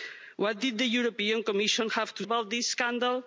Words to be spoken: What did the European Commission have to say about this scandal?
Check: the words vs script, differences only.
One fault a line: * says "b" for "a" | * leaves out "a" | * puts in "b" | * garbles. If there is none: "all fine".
* leaves out "say"